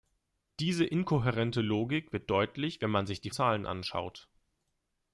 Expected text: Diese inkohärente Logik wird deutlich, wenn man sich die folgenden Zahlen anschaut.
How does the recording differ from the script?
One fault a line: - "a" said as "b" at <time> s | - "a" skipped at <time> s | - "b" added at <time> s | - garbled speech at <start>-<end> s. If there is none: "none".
- "folgenden" skipped at 3.3 s